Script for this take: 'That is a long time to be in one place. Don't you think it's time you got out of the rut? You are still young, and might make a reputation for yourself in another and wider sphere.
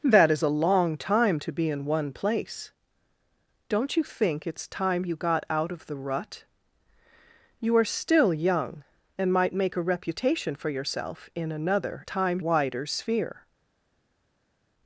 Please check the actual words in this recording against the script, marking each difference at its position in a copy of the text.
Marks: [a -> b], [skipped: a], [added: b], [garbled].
'That is a long time to be in one place. Don't you think it's time you got out of the rut? You are still young, and might make a reputation for yourself in another [and -> time] wider sphere.